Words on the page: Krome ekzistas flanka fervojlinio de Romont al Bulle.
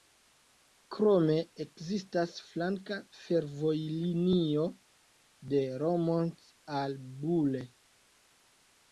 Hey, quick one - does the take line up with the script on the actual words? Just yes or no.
yes